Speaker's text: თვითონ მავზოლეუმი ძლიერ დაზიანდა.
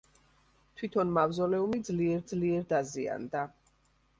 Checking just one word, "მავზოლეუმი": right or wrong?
right